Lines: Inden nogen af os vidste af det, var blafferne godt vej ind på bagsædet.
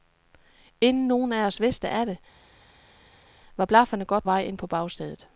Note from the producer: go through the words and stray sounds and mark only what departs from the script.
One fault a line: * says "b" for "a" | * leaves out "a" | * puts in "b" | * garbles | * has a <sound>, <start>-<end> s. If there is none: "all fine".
all fine